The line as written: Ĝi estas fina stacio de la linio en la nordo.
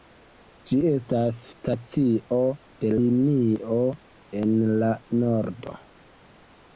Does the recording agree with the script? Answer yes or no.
no